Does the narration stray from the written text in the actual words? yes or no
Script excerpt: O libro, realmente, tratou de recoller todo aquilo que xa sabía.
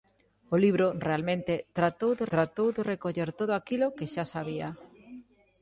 yes